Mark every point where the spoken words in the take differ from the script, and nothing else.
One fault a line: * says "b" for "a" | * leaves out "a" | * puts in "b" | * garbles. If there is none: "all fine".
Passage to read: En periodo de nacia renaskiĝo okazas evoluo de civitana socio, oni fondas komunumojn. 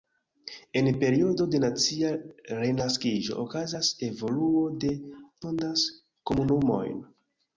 * leaves out "civitana socio oni"